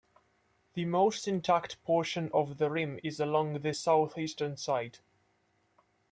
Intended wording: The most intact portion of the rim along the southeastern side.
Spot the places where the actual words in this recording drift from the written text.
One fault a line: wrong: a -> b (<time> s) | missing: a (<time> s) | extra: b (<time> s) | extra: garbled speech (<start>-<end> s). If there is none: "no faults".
extra: is (3.0 s)